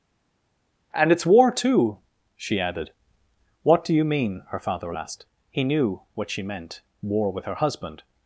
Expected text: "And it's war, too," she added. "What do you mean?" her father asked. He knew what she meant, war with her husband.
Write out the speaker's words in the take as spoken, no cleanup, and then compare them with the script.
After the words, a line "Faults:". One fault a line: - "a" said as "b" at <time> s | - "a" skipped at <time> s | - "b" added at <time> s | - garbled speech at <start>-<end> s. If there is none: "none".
"And it's war, too," she added. "What do you mean?" her father asked. He knew what she meant, war with her husband.
Faults:
none